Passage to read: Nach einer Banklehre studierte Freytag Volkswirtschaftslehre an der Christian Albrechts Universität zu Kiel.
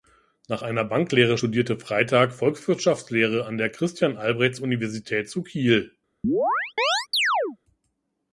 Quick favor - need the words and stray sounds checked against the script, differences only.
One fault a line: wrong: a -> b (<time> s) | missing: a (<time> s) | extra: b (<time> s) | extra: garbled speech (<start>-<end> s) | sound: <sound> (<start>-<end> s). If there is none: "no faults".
sound: chirp (6.2-7.6 s)